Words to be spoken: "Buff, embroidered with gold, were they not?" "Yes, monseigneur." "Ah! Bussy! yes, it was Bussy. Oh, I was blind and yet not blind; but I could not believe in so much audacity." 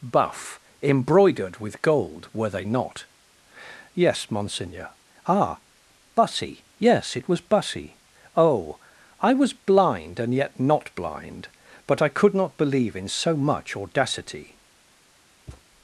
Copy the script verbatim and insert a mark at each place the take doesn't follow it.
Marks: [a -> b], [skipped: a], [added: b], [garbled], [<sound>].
"Buff, embroidered with gold, were they not?" "Yes, monseigneur." "Ah! Bussy! yes, it was Bussy. Oh, I was blind and yet not blind; but I could not believe in so much audacity." [thud]